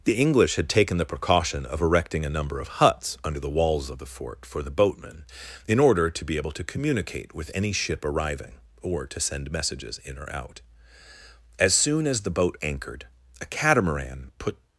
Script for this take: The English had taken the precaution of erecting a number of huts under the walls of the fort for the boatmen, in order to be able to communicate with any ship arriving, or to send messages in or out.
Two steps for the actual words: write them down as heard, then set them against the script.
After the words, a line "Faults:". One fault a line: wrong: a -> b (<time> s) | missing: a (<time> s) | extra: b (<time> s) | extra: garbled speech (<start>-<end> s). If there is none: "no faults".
The English had taken the precaution of erecting a number of huts under the walls of the fort for the boatmen, in order to be able to communicate with any ship arriving, or to send messages in or out. As soon as the boat anchored, a catamaran put
Faults:
extra: As soon as the boat anchored a catamaran put (11.6 s)